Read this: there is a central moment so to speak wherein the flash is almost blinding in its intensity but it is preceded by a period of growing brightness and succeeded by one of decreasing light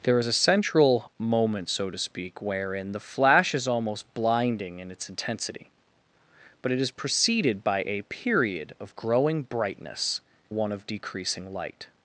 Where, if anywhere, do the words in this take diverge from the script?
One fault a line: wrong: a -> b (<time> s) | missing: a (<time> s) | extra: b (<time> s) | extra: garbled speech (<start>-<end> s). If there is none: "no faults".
missing: and succeeded by (10.2 s)